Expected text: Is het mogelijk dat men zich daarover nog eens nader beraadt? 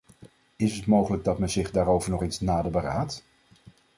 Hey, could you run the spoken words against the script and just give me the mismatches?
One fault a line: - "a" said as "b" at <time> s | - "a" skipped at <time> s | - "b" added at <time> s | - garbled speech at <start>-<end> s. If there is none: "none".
none